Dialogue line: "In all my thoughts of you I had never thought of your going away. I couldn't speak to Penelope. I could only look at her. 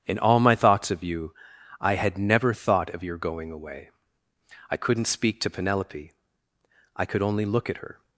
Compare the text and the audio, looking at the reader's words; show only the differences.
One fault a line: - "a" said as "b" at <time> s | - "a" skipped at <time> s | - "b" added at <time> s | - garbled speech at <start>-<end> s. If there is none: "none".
none